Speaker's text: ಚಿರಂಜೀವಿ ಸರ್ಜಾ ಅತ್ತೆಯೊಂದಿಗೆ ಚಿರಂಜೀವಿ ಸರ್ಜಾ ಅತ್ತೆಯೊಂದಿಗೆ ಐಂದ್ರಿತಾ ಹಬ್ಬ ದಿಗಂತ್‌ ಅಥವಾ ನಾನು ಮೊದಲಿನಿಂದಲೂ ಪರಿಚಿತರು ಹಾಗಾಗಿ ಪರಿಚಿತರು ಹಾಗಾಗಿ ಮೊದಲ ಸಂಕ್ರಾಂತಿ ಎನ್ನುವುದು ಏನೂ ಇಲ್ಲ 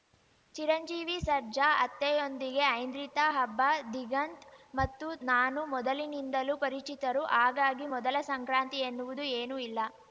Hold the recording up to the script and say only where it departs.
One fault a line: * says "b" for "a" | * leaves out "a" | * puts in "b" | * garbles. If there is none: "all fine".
* leaves out "ಚಿರಂಜೀವಿ ಸರ್ಜಾ ಅತ್ತೆಯೊಂದಿಗೆ"
* says "ಮತ್ತು" for "ಅಥವಾ"
* leaves out "ಪರಿಚಿತರು ಹಾಗಾಗಿ"